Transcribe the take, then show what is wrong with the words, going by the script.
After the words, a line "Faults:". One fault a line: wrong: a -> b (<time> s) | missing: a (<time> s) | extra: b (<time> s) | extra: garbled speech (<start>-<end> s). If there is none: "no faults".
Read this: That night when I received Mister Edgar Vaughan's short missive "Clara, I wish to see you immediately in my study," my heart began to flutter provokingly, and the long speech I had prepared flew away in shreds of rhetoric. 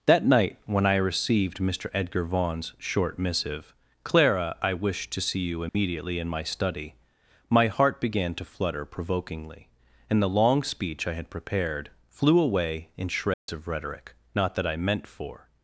That night when I received Mister Edgar Vaughan's short missive "Clara, I wish to see you immediately in my study," my heart began to flutter provokingly, and the long speech I had prepared flew away in shreds of rhetoric. Not that I meant for
Faults:
extra: Not that I meant for (14.3 s)